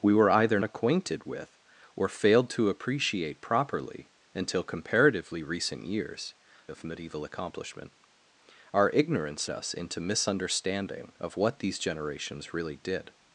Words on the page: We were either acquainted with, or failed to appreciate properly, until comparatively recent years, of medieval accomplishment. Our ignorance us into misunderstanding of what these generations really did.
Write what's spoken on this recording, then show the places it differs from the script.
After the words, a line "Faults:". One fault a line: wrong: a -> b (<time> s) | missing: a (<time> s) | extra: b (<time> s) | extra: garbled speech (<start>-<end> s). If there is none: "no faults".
We were either acquainted with, or failed to appreciate properly, until comparatively recent years, of medieval accomplishment. Our ignorance us into misunderstanding of what these generations really did.
Faults:
no faults